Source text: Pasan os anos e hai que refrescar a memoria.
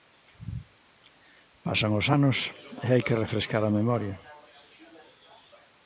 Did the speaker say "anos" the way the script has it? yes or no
yes